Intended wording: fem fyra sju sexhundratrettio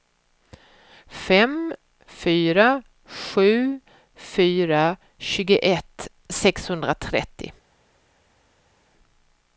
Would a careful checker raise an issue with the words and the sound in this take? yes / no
yes